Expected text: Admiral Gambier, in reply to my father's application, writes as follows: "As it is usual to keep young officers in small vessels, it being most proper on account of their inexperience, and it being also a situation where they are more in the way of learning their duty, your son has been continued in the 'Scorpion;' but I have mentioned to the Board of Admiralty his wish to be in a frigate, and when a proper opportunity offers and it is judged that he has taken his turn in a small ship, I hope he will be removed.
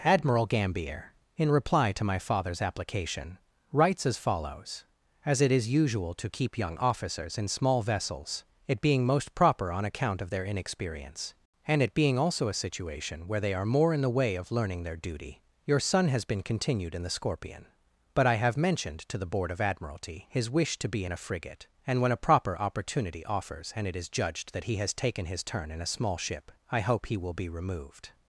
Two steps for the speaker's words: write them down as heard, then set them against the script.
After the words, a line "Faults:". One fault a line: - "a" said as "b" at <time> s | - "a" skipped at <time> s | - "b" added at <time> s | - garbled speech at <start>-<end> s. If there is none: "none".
Admiral Gambier, in reply to my father's application, writes as follows: "As it is usual to keep young officers in small vessels, it being most proper on account of their inexperience, and it being also a situation where they are more in the way of learning their duty, your son has been continued in the 'Scorpion;' but I have mentioned to the Board of Admiralty his wish to be in a frigate, and when a proper opportunity offers and it is judged that he has taken his turn in a small ship, I hope he will be removed.
Faults:
none